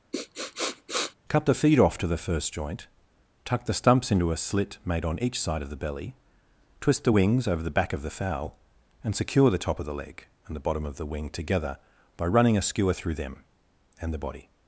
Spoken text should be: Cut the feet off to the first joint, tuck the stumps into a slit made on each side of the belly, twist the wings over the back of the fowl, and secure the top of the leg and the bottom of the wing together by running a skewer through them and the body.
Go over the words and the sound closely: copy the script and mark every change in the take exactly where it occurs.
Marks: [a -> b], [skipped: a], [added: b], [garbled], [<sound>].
[sniff] Cut the feet off to the first joint, tuck the stumps into a slit made on each side of the belly, twist the wings over the back of the fowl, and secure the top of the leg and the bottom of the wing together by running a skewer through them and the body.